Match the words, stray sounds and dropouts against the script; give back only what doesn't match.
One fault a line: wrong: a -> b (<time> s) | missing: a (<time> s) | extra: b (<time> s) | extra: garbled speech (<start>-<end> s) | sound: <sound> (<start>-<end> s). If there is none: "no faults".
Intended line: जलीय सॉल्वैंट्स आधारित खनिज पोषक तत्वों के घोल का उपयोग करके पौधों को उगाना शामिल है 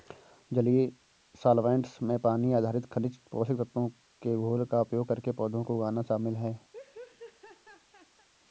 extra: में पानी (2.0 s)
sound: laugh (6.7-8.3 s)